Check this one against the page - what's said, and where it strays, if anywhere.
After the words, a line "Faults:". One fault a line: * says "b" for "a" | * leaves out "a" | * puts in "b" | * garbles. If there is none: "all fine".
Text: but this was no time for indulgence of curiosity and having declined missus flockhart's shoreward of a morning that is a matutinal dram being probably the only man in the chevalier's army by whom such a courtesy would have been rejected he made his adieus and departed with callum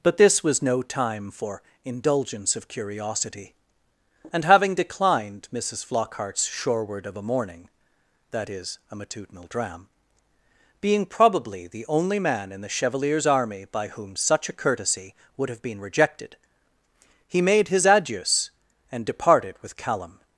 but this was no time for indulgence of curiosity and having declined missus flockhart's shoreward of a morning that is a matutinal dram being probably the only man in the chevalier's army by whom such a courtesy would have been rejected he made his adieus and departed with callum
Faults:
all fine